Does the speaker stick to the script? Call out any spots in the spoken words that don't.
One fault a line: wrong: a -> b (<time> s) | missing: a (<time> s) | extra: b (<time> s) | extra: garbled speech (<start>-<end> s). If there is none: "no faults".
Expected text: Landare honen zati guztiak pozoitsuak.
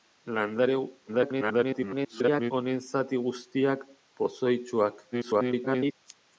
extra: garbled speech (1.1-2.5 s)
extra: garbled speech (5.1-5.9 s)